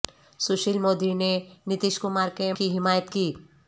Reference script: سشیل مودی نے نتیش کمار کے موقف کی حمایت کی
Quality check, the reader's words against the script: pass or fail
fail